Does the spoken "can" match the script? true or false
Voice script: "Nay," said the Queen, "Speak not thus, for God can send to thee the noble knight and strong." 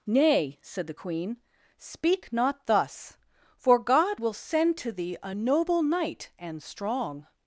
false